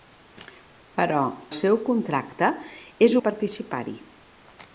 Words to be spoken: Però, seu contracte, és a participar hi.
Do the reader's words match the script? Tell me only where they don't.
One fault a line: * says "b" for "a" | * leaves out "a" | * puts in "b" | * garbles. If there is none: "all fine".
all fine